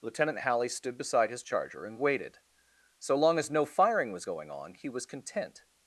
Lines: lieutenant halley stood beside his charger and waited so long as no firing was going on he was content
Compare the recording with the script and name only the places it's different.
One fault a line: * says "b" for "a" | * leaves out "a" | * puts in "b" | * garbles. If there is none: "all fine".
all fine